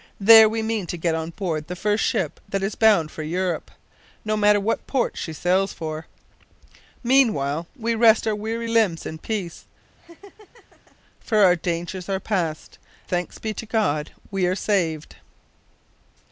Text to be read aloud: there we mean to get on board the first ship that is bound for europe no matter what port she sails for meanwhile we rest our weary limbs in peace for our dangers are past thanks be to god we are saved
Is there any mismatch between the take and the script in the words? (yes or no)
no